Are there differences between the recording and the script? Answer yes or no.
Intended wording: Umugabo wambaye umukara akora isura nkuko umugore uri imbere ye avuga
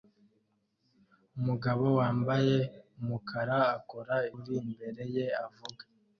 yes